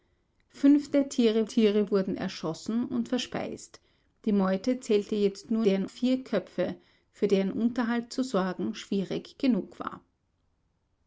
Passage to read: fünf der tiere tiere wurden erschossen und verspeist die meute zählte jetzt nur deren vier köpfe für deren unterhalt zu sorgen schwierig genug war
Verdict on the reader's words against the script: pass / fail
pass